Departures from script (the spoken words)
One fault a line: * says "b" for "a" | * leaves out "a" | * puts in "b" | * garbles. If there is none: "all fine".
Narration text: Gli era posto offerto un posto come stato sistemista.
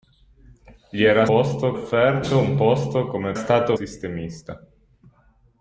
all fine